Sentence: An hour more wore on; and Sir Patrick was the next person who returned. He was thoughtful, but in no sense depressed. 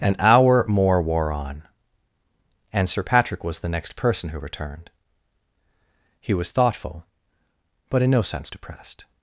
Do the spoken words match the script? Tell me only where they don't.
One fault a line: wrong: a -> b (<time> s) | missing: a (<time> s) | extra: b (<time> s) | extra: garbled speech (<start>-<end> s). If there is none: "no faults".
no faults